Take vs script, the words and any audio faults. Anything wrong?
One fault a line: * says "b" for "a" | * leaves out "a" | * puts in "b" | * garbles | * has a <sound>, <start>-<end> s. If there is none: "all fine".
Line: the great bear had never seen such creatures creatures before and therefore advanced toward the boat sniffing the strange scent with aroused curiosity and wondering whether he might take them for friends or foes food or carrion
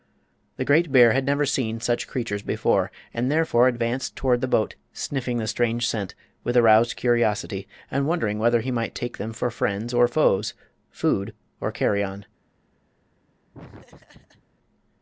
* leaves out "creatures"
* has a laugh, 13.5-14.5 s